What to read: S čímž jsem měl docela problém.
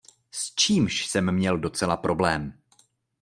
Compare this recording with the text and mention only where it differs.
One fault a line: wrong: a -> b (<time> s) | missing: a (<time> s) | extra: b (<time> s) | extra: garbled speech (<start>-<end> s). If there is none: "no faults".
no faults